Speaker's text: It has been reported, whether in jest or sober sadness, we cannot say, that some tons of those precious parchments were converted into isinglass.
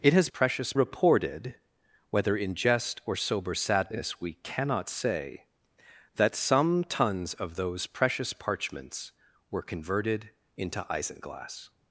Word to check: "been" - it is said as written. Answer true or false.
false